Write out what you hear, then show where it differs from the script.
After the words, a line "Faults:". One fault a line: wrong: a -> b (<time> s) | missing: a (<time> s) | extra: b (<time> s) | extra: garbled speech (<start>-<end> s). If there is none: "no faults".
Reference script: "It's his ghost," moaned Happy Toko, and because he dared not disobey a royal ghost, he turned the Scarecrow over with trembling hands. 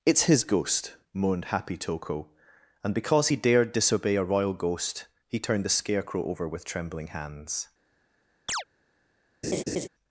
"It's his ghost," moaned Happy Toko, and because he dared disobey a royal ghost, he turned the Scarecrow over with trembling hands.
Faults:
missing: not (3.7 s)